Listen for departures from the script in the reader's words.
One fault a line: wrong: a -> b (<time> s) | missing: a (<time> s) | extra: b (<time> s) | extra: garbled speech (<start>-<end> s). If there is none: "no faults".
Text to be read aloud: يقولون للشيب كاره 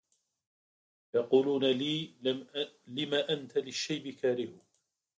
extra: لي لم أنت (1.6 s)